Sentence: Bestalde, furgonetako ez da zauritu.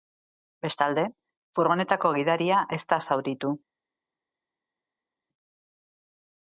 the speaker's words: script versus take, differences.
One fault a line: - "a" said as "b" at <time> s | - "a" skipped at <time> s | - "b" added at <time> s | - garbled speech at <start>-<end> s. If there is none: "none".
- "gidaria" added at 2.2 s